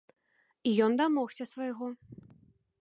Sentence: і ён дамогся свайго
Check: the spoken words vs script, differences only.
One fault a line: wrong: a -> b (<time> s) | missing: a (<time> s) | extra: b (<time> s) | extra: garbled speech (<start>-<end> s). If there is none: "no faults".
no faults